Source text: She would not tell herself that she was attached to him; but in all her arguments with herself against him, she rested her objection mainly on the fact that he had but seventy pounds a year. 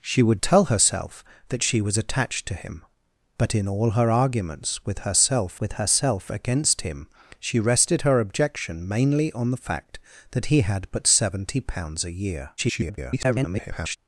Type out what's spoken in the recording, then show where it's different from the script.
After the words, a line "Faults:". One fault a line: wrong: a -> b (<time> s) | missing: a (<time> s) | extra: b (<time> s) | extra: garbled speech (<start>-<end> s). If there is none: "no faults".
She would tell herself that she was attached to him; but in all her arguments with herself with herself against him, she rested her objection mainly on the fact that he had but seventy pounds a year. [garbled]
Faults:
missing: not (0.4 s)
extra: with herself (5.6 s)
extra: garbled speech (12.6-14.0 s)